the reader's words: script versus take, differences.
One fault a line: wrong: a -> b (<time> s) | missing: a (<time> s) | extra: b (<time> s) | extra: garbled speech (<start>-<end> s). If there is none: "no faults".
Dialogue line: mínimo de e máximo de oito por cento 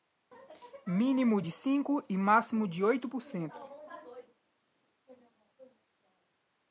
extra: cinco (1.5 s)